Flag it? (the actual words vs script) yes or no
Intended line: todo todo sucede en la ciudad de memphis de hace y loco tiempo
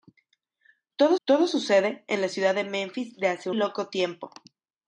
no